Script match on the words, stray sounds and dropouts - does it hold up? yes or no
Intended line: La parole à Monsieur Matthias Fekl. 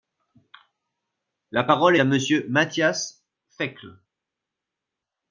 yes